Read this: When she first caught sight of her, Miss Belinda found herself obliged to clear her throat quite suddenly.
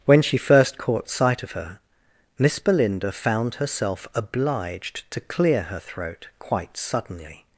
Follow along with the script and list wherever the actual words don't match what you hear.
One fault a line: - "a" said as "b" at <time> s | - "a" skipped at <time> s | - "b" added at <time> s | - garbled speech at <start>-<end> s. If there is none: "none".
none